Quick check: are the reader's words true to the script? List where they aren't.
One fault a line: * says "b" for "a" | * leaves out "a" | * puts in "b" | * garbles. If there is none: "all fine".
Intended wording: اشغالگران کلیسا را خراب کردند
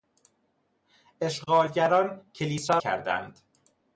* leaves out "را خراب"